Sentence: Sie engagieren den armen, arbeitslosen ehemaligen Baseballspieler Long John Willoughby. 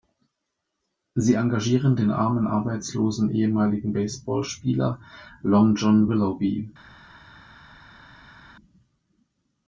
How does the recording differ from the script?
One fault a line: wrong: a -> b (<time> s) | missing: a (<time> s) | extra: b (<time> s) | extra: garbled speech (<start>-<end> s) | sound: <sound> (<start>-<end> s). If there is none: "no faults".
no faults